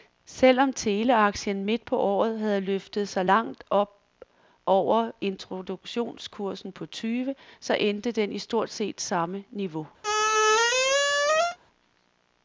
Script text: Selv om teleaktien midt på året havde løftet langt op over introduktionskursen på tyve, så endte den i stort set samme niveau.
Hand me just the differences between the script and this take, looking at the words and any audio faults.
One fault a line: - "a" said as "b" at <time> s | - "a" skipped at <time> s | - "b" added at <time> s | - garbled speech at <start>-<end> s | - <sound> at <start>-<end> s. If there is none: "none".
- "sig" added at 3.1 s
- squeak at 10.0-11.6 s